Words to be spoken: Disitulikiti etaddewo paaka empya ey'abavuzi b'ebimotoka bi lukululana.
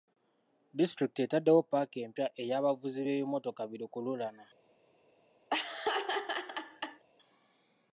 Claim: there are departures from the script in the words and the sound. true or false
true